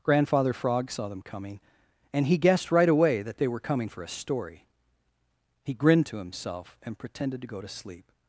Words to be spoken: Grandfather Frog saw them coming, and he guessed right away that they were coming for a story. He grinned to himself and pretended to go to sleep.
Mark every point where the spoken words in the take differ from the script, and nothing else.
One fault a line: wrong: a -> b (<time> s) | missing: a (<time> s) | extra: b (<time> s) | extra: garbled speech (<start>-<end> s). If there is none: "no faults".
no faults